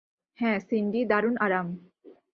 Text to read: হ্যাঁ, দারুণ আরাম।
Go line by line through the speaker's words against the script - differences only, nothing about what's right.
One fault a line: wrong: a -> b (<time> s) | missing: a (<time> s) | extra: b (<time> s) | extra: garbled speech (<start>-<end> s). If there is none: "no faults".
extra: সিন্ডি (0.6 s)